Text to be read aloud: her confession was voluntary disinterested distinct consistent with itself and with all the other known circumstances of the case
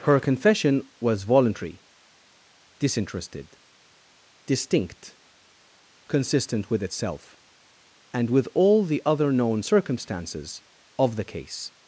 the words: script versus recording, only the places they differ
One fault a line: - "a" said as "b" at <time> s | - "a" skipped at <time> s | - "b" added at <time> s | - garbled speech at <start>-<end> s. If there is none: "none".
none